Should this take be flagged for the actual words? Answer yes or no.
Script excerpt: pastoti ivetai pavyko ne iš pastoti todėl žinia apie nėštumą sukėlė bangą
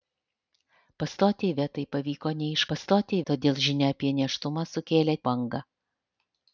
no